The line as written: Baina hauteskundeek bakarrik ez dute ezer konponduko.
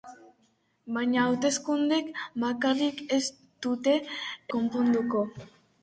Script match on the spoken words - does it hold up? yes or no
no